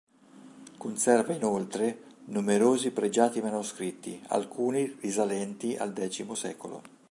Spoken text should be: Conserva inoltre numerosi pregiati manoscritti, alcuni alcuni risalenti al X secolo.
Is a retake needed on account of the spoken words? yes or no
yes